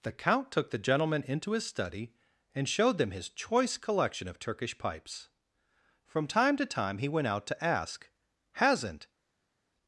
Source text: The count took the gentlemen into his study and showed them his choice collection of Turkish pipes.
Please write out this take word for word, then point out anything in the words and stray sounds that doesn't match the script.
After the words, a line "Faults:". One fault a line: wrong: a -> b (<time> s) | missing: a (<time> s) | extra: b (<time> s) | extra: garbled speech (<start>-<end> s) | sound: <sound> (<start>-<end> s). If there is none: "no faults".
The count took the gentlemen into his study and showed them his choice collection of Turkish pipes. From time to time he went out to ask: "Hasn't
Faults:
extra: From time to time he went out to ask Hasn't (6.0 s)